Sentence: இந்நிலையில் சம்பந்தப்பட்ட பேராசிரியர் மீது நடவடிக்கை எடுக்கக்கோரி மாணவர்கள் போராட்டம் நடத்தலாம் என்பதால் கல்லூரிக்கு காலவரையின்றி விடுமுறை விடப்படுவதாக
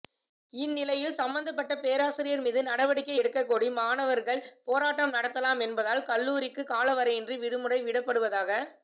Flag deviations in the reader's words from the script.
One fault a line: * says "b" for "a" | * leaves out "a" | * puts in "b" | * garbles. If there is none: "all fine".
all fine